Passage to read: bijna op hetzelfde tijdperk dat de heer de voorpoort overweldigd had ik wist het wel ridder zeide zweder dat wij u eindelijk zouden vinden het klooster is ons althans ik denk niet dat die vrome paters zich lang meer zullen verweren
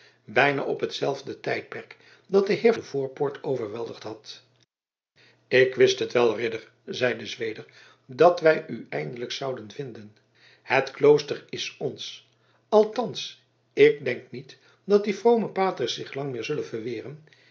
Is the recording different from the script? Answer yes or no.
no